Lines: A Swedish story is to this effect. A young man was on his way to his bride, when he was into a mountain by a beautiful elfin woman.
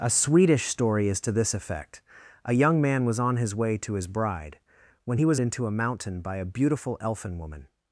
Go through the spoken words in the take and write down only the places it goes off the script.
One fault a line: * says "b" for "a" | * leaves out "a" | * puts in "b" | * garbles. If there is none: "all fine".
all fine